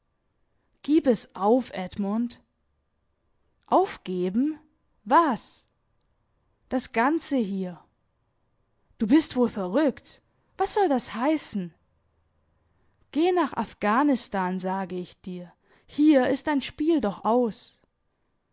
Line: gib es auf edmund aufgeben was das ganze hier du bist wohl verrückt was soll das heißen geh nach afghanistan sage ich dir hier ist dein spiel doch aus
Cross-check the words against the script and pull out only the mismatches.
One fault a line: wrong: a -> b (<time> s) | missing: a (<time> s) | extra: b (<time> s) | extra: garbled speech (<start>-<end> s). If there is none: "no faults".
no faults